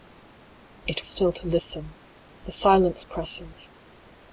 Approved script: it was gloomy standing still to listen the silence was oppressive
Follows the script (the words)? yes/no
no